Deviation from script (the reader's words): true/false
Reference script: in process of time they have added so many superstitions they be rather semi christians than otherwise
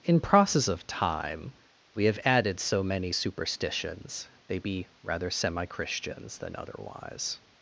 true